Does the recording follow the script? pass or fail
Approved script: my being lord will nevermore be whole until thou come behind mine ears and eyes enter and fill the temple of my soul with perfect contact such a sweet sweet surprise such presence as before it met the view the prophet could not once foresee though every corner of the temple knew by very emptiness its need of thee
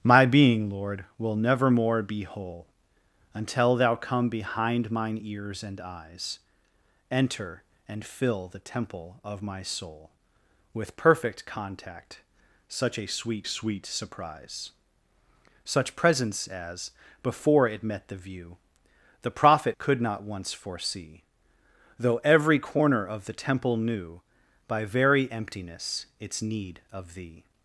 pass